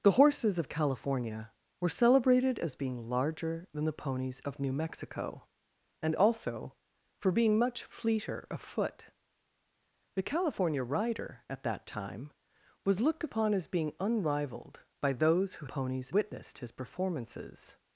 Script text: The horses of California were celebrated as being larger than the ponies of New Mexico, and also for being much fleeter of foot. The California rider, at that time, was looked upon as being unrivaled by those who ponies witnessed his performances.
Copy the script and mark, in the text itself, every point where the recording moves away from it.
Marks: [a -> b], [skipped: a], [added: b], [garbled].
The horses of California were celebrated as being larger than the ponies of New Mexico, and also for being much fleeter of foot. The California rider, at that time, was looked upon as being unrivaled by those who ponies witnessed his performances.